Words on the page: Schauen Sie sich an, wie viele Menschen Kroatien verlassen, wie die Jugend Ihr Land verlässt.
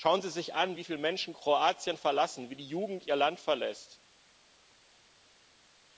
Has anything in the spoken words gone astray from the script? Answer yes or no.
no